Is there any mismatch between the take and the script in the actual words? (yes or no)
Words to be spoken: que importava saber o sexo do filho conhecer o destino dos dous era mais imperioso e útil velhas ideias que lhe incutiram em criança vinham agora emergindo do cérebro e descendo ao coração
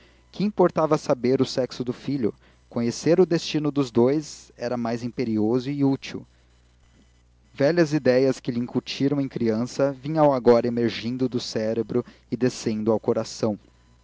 no